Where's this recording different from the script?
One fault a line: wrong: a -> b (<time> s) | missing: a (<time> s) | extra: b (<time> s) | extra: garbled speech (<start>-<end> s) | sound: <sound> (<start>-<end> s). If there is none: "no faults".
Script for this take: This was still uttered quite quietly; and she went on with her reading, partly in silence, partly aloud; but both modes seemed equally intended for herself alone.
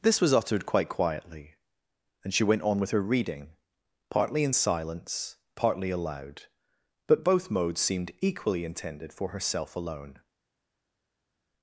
missing: still (0.3 s)